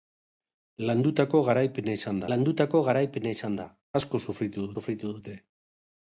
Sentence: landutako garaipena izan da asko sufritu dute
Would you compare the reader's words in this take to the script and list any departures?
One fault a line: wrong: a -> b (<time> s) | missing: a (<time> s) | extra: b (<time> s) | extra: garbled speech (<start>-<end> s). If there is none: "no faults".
extra: landutako garaipena izan (2.3 s)
extra: sufritu (4.8 s)